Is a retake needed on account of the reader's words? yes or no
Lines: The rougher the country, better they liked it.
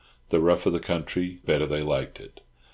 no